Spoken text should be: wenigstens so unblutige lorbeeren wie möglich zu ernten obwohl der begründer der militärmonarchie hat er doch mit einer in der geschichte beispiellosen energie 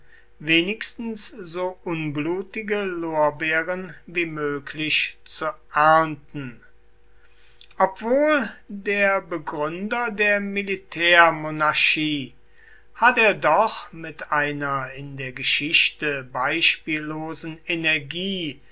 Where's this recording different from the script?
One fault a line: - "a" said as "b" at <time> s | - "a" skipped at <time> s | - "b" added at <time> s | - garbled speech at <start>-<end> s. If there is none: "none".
none